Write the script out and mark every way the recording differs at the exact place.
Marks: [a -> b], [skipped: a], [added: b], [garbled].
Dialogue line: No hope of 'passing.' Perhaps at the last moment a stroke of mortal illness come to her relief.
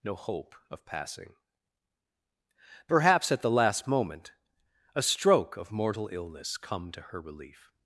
No hope of 'passing.' Perhaps at the last moment a stroke of mortal illness come to her relief.